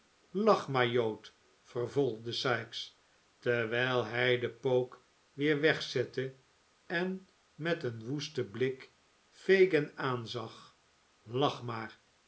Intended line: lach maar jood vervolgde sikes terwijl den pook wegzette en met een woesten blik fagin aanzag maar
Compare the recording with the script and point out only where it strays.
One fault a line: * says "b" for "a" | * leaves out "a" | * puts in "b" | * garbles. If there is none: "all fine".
* puts in "hij"
* puts in "weer"
* puts in "lach"